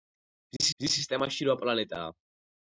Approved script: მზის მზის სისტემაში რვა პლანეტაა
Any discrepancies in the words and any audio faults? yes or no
yes